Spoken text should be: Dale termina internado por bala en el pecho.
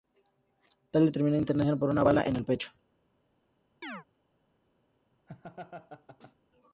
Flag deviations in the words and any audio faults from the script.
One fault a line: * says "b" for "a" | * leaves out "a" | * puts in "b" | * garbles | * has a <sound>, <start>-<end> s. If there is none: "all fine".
* puts in "una"
* has a chirp, 3.8-4.0 s
* has a laugh, 5.3-6.3 s